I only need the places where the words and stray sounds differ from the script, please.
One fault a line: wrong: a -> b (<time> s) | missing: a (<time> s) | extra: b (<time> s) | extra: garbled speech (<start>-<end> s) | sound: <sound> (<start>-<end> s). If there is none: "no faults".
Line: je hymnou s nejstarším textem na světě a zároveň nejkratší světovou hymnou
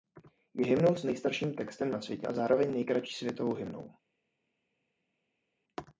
no faults